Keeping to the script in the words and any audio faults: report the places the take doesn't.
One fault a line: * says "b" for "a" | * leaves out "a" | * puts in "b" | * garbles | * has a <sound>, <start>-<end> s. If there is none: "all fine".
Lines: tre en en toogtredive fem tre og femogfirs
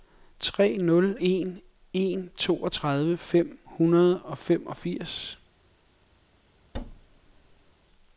* puts in "nul"
* says "hundrede" for "tre"
* has a thud, 6.7-7.7 s